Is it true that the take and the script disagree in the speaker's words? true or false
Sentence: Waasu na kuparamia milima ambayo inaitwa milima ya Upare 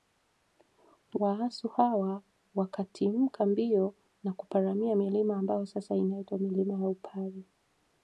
true